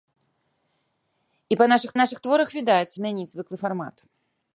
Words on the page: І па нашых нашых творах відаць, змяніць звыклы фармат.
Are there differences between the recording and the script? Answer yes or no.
no